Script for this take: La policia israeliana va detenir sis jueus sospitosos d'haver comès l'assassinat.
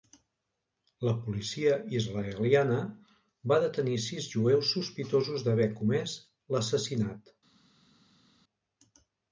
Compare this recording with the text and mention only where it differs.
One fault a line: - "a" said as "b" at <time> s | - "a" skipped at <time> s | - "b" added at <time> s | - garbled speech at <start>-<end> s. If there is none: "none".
none